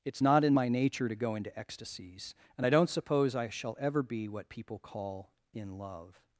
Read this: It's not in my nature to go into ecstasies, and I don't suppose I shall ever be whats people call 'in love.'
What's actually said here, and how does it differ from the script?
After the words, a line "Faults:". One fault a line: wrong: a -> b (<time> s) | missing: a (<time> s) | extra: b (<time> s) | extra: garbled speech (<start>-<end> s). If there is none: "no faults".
It's not in my nature to go into ecstasies, and I don't suppose I shall ever be what people call 'in love.'
Faults:
wrong: whats -> what (4.3 s)